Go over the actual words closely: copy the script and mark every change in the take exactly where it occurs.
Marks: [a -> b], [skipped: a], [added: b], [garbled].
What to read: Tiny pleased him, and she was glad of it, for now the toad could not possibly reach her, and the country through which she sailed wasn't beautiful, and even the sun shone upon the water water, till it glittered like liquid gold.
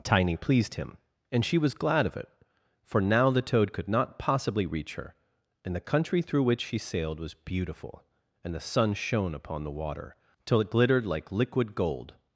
Tiny pleased him, and she was glad of it, for now the toad could not possibly reach her, and the country through which she sailed [wasn't -> was] beautiful, and [skipped: even] the sun shone upon the water [skipped: water,] till it glittered like liquid gold.